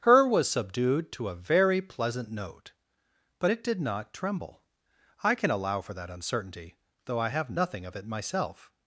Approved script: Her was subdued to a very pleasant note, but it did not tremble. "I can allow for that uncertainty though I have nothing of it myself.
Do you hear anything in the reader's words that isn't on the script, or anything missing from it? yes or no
no